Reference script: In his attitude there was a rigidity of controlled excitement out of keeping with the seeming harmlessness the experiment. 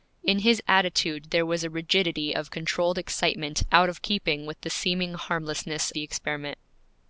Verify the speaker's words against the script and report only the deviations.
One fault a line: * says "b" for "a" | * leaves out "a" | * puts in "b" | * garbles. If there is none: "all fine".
all fine